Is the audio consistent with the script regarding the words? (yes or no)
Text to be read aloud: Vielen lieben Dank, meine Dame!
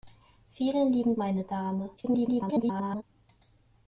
no